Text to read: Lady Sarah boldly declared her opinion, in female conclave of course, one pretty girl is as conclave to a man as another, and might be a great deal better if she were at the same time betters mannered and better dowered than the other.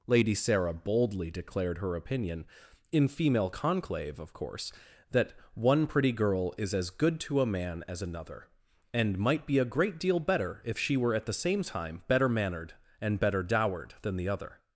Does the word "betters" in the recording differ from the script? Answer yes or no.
yes